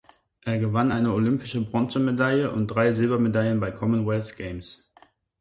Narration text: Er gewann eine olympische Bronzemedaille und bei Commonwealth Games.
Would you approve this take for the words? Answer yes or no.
no